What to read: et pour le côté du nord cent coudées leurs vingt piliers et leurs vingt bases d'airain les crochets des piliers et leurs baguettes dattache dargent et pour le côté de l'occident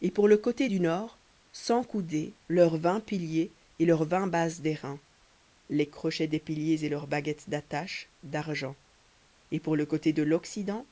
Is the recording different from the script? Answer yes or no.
no